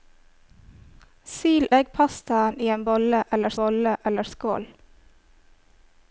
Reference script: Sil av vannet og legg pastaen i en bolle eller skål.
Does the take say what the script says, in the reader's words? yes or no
no